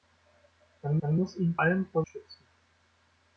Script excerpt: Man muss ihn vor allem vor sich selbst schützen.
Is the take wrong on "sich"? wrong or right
wrong